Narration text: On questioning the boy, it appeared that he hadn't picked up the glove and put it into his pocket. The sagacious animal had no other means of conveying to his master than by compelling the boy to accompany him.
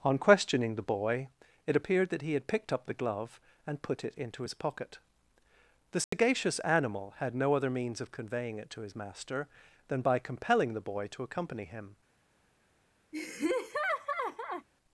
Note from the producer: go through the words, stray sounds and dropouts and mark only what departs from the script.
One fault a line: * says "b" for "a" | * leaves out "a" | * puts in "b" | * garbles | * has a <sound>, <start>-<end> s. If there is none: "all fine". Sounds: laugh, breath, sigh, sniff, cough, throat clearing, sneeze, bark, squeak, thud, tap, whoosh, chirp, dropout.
* says "had" for "hadn't"
* has a dropout, 6.0-6.1 s
* puts in "it"
* has a laugh, 13.1-14.7 s